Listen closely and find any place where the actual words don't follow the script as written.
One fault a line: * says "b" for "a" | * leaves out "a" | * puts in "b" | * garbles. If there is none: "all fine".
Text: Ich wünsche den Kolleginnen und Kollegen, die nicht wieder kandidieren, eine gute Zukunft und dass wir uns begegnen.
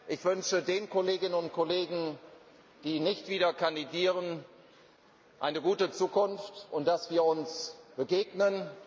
all fine